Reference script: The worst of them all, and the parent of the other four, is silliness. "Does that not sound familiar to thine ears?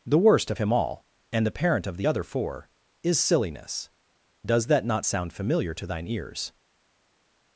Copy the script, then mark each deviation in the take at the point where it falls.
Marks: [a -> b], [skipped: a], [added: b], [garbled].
The worst of [them -> him] all, and the parent of the other four, is silliness. "Does that not sound familiar to thine ears?